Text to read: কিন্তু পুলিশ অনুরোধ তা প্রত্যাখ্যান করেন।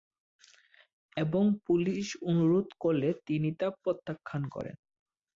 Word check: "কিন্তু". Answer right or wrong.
wrong